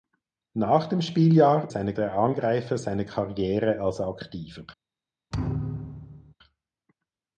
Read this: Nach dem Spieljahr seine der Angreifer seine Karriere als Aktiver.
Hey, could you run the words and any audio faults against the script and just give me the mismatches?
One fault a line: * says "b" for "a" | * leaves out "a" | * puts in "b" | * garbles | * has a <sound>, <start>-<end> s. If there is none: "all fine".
* has a thud, 5.3-6.3 s